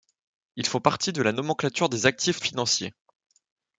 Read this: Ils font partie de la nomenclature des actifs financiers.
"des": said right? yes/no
yes